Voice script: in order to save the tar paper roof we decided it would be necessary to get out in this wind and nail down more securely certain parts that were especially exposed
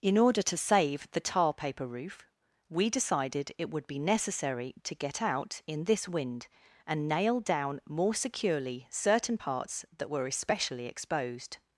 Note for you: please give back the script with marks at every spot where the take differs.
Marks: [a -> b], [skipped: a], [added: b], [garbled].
in order to save the tar paper roof we decided it would be necessary to get out in this wind and nail down more securely certain parts that were especially exposed